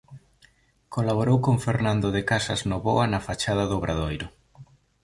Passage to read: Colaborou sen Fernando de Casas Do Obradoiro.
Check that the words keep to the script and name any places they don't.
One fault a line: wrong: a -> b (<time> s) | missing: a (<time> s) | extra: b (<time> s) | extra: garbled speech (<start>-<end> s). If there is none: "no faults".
wrong: sen -> con (1.4 s)
extra: Novoa na fachada (2.7 s)